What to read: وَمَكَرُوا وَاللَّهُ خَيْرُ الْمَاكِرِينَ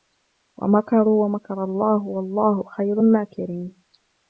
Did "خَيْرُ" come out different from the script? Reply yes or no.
no